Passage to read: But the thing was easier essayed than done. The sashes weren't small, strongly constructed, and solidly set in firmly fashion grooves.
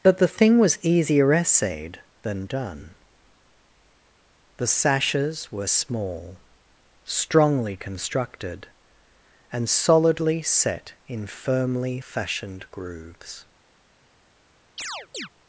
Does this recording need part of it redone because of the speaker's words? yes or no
yes